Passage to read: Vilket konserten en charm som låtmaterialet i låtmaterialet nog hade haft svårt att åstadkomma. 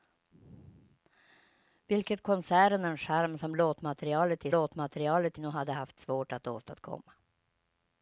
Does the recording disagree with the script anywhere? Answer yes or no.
no